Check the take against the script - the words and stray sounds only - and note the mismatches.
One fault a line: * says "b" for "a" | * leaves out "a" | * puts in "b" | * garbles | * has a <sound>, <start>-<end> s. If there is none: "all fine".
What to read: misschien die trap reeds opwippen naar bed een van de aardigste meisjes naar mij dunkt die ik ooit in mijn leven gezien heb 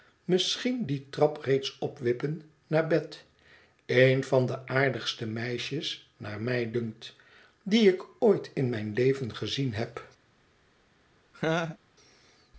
* has a laugh, 11.3-11.8 s